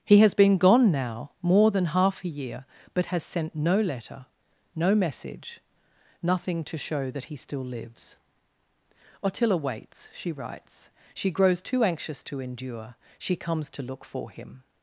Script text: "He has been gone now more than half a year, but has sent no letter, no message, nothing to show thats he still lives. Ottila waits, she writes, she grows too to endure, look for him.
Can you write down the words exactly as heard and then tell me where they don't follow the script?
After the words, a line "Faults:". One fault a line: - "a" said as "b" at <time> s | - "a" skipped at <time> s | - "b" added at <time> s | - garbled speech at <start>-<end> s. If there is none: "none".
"He has been gone now more than half a year, but has sent no letter, no message, nothing to show that he still lives. Ottila waits, she writes, she grows too anxious to endure, she comes to look for him.
Faults:
- "thats" said as "that" at 7.1 s
- "anxious" added at 11.8 s
- "she comes to" added at 13.2 s